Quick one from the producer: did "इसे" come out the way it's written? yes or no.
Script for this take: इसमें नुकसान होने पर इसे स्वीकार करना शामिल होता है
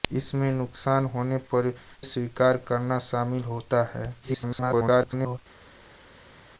no